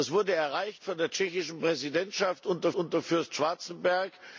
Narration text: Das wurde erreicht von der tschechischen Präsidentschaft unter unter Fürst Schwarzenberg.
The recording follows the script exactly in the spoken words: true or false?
true